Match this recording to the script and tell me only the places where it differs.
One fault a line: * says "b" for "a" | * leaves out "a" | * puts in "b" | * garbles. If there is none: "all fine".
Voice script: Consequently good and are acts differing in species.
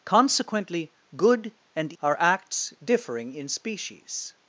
all fine